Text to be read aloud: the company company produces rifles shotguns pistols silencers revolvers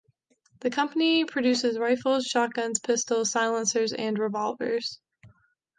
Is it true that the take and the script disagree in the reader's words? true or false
true